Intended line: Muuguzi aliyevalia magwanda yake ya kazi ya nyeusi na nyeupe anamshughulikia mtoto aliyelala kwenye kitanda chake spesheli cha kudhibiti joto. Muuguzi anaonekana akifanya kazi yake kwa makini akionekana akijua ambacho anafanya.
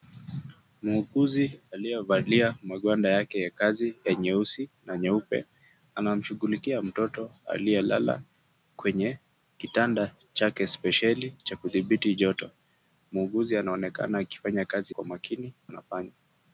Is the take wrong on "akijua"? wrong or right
wrong